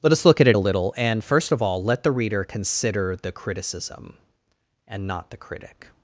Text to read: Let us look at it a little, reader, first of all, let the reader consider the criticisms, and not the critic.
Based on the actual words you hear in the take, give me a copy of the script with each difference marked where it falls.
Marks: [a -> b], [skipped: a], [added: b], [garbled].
Let us look at it a little, [reader, -> and] first of all, let the reader consider the [criticisms, -> criticism] and not the critic.